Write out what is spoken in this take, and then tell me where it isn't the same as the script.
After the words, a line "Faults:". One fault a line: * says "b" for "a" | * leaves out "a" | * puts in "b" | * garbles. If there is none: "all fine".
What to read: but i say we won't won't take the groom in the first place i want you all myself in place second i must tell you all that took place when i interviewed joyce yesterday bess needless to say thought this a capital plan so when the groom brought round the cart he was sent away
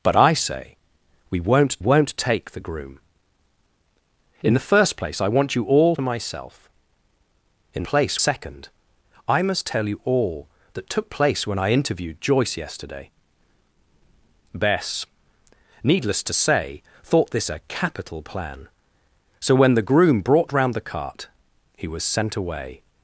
but i say we won't won't take the groom in the first place i want you all myself in place second i must tell you all that took place when i interviewed joyce yesterday bess needless to say thought this a capital plan so when the groom brought round the cart he was sent away
Faults:
all fine